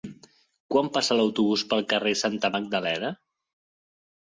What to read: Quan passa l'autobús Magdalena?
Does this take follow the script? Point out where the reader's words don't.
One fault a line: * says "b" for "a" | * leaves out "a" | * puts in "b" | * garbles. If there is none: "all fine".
* puts in "pel carrer Santa"